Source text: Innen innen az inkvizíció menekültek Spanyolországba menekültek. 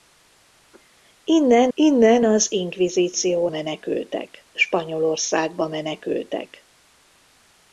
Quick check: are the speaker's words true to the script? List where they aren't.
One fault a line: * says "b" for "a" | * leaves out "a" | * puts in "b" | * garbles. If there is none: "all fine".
all fine